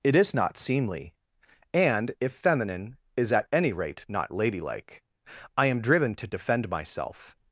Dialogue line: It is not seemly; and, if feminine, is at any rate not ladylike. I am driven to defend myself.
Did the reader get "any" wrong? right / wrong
right